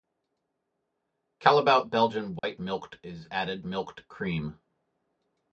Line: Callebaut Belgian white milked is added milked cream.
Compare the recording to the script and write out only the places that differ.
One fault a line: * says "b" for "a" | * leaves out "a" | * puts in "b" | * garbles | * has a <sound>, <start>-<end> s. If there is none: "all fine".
* has a dropout, 2.4-2.4 s